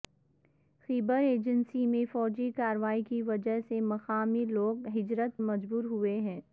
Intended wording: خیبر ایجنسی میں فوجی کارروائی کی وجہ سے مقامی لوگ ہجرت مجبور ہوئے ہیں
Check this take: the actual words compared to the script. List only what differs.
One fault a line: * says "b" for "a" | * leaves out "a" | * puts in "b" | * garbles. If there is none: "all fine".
all fine